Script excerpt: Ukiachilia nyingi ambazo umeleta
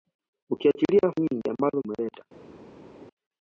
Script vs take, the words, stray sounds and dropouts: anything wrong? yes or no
no